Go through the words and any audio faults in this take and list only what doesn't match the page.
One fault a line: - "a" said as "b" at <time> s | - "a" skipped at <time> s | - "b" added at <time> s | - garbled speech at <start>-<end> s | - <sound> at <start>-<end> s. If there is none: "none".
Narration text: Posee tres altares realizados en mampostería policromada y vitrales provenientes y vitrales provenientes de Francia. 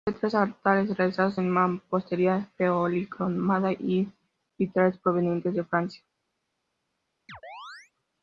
- "y vitrales provenientes" skipped at 5.5 s
- chirp at 7.3-7.9 s